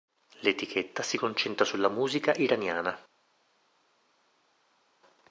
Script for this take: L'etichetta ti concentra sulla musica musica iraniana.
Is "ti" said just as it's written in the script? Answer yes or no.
no